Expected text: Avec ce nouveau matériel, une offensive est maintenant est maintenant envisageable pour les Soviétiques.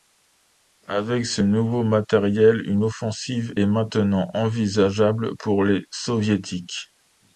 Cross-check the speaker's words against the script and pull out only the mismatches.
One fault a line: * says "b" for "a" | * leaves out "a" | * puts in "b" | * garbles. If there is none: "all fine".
* leaves out "est maintenant"